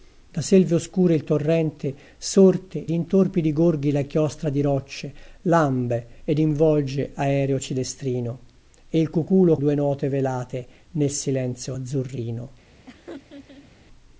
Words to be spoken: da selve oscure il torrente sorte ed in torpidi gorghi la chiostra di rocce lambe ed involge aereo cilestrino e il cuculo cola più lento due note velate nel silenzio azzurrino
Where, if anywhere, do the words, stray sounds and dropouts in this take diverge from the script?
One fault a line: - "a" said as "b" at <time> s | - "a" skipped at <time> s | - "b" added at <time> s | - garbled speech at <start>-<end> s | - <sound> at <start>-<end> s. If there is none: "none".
- "ed" skipped at 2.9 s
- "cola più lento" skipped at 9.6 s
- laugh at 12.9-13.7 s